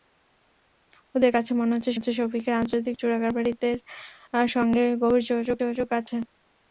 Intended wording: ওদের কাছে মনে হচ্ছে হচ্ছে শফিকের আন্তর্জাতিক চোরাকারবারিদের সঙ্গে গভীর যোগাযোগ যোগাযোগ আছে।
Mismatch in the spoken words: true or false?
false